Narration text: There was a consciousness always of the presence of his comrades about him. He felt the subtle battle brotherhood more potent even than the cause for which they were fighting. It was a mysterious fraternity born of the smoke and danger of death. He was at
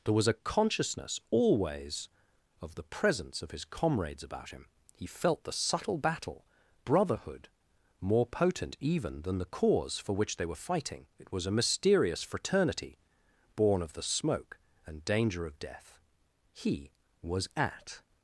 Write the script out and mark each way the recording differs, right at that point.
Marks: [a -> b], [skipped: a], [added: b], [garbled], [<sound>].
There was a consciousness always of the presence of his comrades about him. He felt the subtle battle brotherhood more potent even than the cause for which they were fighting. It was a mysterious fraternity born of the smoke and danger of death. He was at